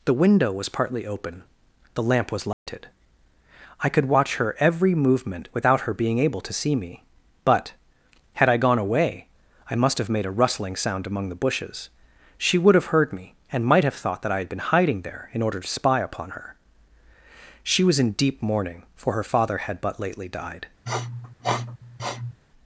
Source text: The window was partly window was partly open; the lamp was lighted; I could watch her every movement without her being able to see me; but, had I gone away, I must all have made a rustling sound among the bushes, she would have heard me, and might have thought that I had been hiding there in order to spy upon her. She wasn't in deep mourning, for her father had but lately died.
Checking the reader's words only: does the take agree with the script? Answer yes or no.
no